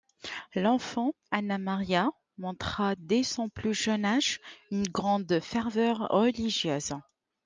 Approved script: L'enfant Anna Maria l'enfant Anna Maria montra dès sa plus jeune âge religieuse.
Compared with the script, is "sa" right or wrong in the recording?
wrong